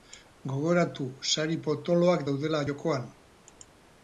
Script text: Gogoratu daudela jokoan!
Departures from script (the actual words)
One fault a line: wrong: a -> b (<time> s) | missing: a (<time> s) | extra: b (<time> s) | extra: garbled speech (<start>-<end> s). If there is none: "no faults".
extra: sari potoloak (1.3 s)